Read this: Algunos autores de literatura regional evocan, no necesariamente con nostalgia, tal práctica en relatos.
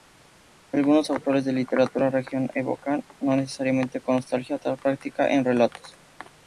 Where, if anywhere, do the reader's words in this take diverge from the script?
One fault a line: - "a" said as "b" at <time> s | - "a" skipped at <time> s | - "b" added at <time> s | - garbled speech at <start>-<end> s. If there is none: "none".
none